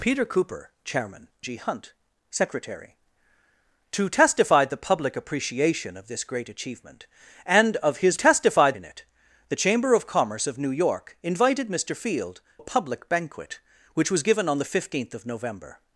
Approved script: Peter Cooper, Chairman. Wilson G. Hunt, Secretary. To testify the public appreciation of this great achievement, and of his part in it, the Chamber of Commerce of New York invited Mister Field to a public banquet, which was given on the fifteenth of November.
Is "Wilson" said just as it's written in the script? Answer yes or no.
no